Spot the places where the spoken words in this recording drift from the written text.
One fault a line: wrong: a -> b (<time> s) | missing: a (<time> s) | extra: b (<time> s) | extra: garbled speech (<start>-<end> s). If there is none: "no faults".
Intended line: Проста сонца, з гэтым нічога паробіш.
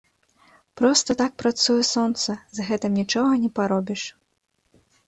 extra: так працуе (1.2 s)
extra: не (3.4 s)